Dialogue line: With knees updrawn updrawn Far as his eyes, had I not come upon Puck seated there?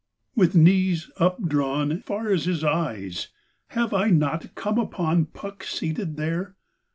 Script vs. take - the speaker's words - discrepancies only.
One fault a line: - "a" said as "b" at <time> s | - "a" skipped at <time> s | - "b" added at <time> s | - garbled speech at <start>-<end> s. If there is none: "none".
- "updrawn" skipped at 2.0 s
- "had" said as "have" at 3.7 s